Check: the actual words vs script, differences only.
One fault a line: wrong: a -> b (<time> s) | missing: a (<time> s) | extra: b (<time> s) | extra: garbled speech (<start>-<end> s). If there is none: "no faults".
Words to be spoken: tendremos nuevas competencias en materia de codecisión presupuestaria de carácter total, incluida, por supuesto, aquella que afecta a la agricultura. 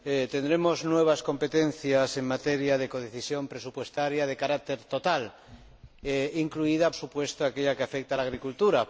missing: por (6.9 s)